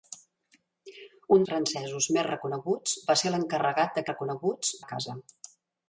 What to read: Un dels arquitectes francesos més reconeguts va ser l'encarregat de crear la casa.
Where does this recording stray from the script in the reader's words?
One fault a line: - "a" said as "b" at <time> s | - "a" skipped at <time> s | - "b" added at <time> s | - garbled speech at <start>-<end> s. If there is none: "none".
- "dels arquitectes" skipped at 1.4 s
- "crear" said as "reconeguts" at 4.1 s